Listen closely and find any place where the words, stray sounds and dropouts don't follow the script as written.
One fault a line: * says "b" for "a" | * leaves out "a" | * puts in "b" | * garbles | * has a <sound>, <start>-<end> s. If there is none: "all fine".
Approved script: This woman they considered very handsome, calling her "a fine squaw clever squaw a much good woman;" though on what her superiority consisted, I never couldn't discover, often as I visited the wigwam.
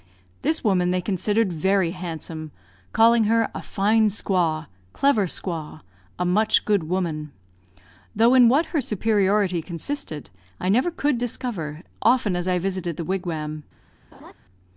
* says "in" for "on"
* says "could" for "couldn't"
* has a laugh, 14.1-14.3 s